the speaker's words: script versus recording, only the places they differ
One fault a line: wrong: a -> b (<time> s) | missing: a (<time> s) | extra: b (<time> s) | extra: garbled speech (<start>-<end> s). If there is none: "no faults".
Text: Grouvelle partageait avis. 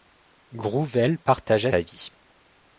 no faults